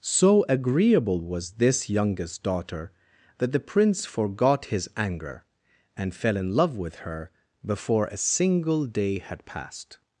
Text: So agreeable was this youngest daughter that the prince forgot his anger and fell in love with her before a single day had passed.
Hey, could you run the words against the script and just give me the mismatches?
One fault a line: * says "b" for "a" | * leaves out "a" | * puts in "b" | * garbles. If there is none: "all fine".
all fine